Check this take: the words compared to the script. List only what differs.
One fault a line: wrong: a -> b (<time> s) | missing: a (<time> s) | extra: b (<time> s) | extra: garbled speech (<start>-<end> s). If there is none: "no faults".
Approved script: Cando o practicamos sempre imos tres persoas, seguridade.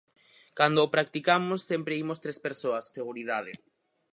no faults